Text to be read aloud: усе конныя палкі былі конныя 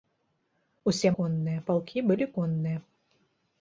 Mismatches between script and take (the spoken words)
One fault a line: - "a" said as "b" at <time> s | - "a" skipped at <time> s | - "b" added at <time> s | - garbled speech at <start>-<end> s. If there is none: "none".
none